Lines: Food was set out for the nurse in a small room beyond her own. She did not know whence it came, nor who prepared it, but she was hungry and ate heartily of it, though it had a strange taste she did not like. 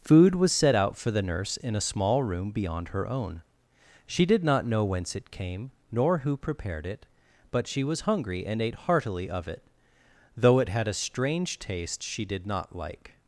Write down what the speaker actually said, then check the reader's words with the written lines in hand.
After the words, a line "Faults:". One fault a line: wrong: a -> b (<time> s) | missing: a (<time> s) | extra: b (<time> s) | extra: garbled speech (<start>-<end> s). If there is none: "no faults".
Food was set out for the nurse in a small room beyond her own. She did not know whence it came, nor who prepared it, but she was hungry and ate heartily of it, though it had a strange taste she did not like.
Faults:
no faults